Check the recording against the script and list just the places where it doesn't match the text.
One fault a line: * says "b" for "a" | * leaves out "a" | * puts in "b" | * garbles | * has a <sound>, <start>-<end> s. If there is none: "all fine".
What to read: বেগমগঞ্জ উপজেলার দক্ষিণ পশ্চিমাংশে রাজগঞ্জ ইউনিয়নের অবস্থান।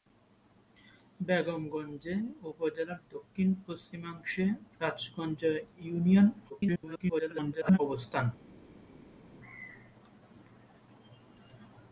* garbles